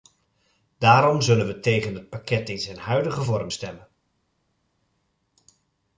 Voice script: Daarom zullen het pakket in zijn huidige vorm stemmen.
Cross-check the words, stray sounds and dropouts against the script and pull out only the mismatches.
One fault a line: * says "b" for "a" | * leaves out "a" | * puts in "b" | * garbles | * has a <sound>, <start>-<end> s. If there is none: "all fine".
* puts in "we tegen"